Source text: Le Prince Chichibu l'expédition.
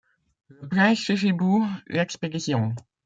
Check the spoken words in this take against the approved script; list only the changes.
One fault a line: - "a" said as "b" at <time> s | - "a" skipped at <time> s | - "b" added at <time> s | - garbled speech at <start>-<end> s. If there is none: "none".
none